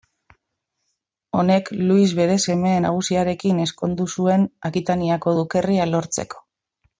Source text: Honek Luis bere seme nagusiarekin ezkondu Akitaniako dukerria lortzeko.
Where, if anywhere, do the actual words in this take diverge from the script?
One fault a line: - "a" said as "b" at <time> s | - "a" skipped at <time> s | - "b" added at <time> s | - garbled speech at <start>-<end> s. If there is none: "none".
- "zuen" added at 4.2 s